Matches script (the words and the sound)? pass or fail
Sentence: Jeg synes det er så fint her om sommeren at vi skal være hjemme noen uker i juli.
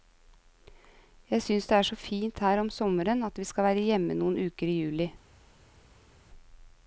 pass